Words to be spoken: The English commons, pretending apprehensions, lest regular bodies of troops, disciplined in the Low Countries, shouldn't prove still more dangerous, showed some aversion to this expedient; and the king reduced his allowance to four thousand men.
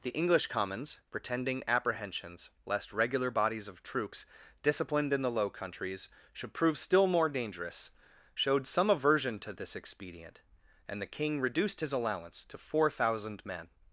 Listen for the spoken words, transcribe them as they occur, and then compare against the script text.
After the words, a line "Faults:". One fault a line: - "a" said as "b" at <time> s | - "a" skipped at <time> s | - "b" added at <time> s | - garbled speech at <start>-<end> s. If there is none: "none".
The English commons, pretending apprehensions, lest regular bodies of troops, disciplined in the Low Countries, should prove still more dangerous, showed some aversion to this expedient; and the king reduced his allowance to four thousand men.
Faults:
- "shouldn't" said as "should" at 6.3 s